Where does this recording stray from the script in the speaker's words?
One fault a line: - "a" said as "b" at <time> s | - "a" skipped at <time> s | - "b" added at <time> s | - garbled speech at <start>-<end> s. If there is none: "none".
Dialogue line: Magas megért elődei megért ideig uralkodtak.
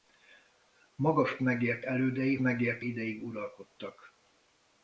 none